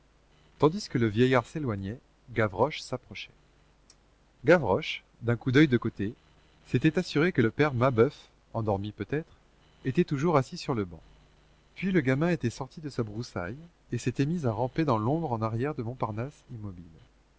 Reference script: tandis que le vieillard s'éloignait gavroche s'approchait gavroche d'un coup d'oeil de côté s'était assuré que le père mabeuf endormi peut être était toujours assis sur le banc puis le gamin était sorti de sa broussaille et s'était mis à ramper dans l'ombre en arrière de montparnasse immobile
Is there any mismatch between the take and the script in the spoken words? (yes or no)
no